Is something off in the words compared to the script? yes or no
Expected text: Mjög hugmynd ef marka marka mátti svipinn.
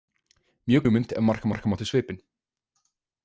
no